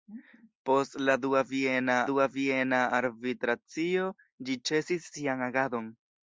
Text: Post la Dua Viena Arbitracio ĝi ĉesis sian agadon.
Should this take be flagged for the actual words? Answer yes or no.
yes